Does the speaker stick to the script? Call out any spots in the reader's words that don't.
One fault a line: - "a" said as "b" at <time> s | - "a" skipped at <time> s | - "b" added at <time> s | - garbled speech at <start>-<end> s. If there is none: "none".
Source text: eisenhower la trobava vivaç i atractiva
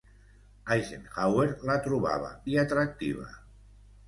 - "vivaç" skipped at 2.3 s